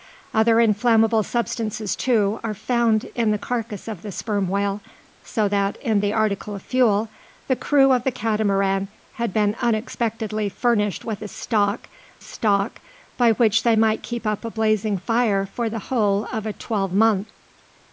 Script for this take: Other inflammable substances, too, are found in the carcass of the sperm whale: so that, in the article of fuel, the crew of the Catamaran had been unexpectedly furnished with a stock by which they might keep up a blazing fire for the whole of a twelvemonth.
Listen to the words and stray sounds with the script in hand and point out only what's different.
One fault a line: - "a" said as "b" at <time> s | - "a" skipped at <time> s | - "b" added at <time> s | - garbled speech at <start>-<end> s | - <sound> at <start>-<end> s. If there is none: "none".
- "stock" added at 12.2 s